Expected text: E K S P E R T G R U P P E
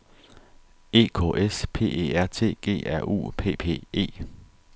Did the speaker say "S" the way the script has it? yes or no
yes